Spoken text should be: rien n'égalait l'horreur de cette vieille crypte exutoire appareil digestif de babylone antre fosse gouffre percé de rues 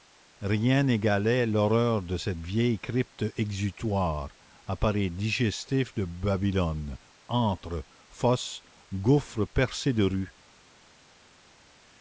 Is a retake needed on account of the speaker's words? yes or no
no